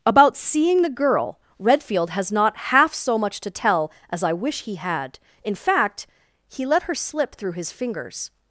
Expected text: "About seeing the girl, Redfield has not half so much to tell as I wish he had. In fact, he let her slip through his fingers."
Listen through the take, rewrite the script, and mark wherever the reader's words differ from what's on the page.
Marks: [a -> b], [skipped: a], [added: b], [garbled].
"About seeing the girl, Redfield has not half so much to tell as I wish he had. In fact, he let her slip through his fingers."